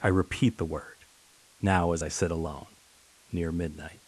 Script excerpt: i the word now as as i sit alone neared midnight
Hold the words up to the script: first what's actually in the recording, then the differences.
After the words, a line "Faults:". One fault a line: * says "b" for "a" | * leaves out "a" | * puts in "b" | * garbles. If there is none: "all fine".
i repeat the word now as i sit alone near midnight
Faults:
* puts in "repeat"
* leaves out "as"
* says "near" for "neared"